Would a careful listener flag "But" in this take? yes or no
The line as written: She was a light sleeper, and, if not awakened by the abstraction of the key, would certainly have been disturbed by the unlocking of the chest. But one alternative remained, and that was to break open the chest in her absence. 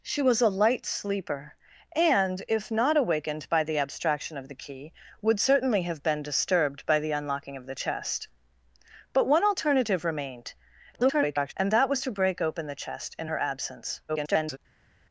no